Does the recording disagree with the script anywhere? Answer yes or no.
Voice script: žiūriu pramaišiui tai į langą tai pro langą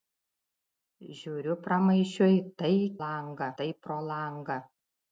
no